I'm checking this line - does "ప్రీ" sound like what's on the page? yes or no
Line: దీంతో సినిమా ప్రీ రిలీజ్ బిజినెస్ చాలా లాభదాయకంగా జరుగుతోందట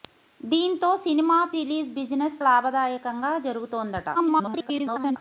no